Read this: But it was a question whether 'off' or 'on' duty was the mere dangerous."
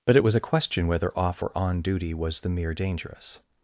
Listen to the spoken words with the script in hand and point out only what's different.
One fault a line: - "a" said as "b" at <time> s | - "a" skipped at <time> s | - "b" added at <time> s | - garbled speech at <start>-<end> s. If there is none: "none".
none